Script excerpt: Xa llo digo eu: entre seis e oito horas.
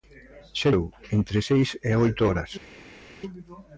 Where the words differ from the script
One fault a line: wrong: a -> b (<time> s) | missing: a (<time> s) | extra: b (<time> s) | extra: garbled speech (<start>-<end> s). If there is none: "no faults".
missing: llo digo (0.7 s)